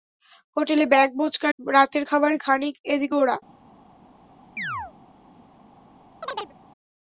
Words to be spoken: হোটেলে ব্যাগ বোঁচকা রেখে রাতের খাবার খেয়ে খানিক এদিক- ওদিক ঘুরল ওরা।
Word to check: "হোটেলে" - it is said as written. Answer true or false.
true